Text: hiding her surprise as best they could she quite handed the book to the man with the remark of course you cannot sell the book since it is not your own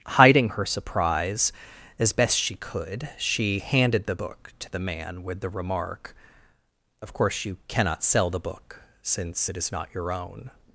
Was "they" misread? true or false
true